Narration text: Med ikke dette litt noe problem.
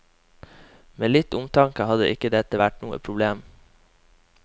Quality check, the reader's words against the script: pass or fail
fail